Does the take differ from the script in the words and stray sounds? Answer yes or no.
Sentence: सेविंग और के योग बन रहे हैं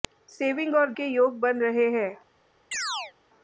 yes